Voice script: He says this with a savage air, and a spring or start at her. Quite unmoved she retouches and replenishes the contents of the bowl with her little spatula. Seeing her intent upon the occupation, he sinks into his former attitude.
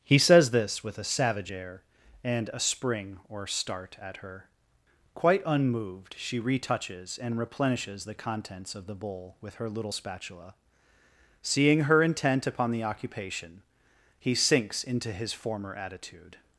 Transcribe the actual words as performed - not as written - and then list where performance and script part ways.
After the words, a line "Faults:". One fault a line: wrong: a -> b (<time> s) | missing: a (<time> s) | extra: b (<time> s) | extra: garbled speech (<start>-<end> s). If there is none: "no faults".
He says this with a savage air, and a spring or start at her. Quite unmoved she retouches and replenishes the contents of the bowl with her little spatula. Seeing her intent upon the occupation, he sinks into his former attitude.
Faults:
no faults